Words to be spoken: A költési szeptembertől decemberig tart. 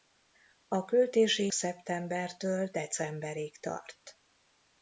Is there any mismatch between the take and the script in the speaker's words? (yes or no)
no